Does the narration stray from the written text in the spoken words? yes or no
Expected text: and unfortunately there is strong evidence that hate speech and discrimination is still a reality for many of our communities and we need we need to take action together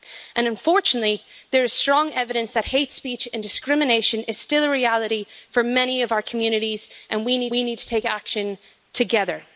no